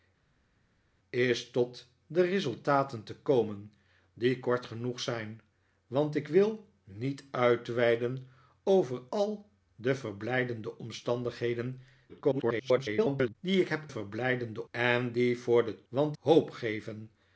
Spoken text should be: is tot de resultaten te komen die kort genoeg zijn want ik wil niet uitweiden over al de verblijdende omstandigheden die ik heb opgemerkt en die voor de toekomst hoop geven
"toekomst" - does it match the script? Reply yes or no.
no